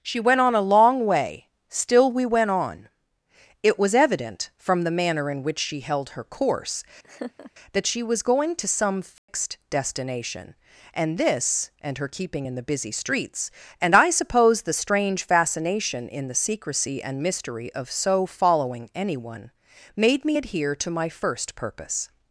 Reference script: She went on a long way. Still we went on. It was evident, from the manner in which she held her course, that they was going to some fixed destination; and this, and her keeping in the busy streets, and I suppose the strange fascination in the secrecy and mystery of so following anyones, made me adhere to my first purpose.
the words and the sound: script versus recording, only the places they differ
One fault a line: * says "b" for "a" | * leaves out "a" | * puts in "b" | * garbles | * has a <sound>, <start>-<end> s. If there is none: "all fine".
* has a laugh, 7.0-7.5 s
* says "she" for "they"
* has a dropout, 9.2-9.3 s
* says "anyone" for "anyones"